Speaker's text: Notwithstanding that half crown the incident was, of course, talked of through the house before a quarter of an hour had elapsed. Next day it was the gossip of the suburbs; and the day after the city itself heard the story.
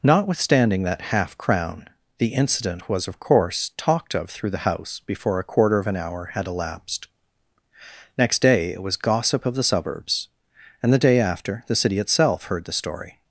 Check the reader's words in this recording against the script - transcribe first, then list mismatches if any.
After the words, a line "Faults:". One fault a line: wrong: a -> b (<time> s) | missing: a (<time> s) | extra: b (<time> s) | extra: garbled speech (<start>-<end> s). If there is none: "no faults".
Notwithstanding that half crown the incident was, of course, talked of through the house before a quarter of an hour had elapsed. Next day it was gossip of the suburbs; and the day after the city itself heard the story.
Faults:
missing: the (9.0 s)